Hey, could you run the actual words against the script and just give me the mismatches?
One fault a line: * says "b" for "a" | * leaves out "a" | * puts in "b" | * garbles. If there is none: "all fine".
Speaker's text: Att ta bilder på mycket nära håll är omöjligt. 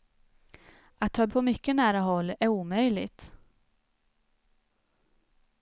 * leaves out "bilder"